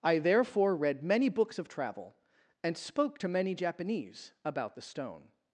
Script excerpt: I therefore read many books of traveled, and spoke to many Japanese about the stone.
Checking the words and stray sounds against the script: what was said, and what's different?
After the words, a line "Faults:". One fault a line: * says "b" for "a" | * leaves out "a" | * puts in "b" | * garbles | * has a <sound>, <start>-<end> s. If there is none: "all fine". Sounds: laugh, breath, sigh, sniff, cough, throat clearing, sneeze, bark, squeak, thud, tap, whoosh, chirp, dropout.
I therefore read many books of travel, and spoke to many Japanese about the stone.
Faults:
* says "travel" for "traveled"